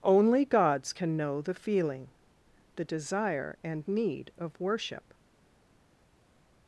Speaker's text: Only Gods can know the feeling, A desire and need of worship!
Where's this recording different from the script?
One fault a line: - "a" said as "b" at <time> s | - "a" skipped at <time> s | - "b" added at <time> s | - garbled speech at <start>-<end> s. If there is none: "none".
- "A" said as "The" at 2.8 s